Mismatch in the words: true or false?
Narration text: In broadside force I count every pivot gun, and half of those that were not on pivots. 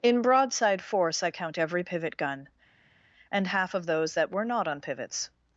false